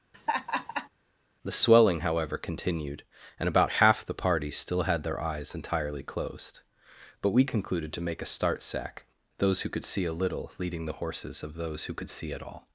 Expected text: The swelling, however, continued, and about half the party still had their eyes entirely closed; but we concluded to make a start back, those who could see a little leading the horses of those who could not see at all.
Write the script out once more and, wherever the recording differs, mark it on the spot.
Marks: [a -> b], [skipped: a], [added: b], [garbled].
The swelling, however, continued, and about half the party still had their eyes entirely closed; but we concluded to make a start [back, -> sack] those who could see a little leading the horses of those who could [skipped: not] see at all.